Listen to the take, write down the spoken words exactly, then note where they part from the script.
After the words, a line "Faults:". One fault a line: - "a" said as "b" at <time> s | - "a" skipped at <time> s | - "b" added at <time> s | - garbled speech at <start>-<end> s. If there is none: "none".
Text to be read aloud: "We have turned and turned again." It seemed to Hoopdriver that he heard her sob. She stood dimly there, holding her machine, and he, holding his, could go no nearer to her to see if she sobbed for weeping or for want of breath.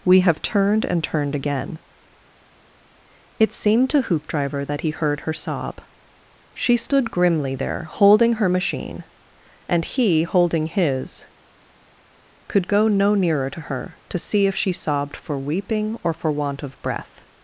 "We have turned and turned again." It seemed to Hoopdriver that he heard her sob. She stood grimly there, holding her machine, and he, holding his, could go no nearer to her to see if she sobbed for weeping or for want of breath.
Faults:
- "dimly" said as "grimly" at 7.1 s